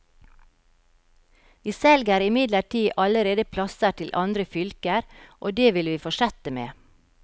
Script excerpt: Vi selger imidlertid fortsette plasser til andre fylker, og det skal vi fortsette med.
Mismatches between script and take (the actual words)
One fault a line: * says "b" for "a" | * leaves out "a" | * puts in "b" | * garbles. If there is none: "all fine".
* says "allerede" for "fortsette"
* says "vil" for "skal"